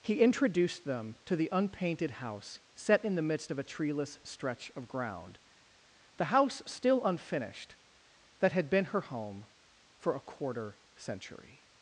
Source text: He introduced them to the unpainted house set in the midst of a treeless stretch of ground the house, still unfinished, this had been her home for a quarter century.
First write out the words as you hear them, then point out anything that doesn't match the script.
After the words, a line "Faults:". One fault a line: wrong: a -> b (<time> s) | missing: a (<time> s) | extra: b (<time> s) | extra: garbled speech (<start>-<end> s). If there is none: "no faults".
He introduced them to the unpainted house set in the midst of a treeless stretch of ground the house, still unfinished, that had been her home for a quarter century.
Faults:
wrong: this -> that (8.4 s)